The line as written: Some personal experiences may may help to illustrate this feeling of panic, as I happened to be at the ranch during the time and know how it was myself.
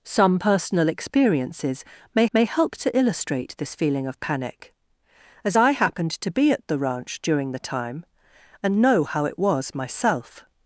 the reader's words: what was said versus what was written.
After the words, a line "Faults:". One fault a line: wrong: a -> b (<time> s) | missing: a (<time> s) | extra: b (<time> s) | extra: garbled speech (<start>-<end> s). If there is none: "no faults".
Some personal experiences may may help to illustrate this feeling of panic, as I happened to be at the ranch during the time and know how it was myself.
Faults:
no faults